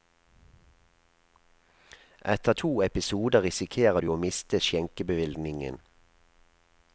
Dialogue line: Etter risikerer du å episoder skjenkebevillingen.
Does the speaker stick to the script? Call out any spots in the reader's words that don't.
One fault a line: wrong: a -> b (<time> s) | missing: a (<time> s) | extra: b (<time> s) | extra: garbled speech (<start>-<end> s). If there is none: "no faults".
extra: to episoder (2.5 s)
wrong: episoder -> miste (4.2 s)